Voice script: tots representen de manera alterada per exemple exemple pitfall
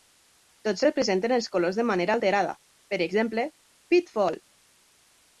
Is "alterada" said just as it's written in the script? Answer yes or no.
yes